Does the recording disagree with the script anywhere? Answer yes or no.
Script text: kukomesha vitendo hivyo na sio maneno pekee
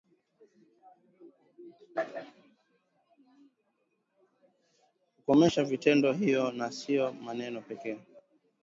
no